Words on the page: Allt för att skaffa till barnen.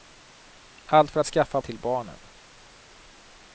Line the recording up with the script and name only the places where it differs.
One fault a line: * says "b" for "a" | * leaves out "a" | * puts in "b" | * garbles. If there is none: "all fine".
all fine